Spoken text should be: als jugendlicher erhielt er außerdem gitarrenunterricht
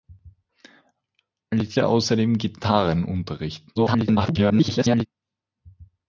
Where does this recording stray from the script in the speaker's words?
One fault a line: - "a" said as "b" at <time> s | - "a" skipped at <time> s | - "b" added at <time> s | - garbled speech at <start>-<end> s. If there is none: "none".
- "jugendlicher erhielt" skipped at 1.8 s
- garbled speech at 3.8-5.1 s